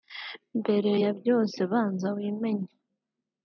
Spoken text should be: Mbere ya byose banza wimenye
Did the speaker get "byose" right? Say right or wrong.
right